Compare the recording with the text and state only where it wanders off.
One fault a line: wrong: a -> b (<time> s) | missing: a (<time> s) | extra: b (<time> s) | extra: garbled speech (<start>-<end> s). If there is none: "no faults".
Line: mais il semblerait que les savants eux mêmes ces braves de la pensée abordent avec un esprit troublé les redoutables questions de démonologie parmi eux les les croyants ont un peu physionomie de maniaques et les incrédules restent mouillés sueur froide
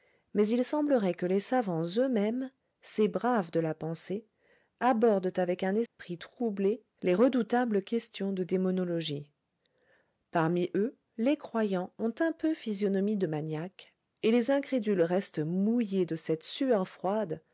missing: les (11.4 s)
extra: de cette (16.1 s)